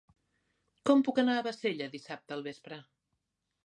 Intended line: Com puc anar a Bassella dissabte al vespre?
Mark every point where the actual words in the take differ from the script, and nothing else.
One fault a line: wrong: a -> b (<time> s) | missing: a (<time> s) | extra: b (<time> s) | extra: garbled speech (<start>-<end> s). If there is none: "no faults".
no faults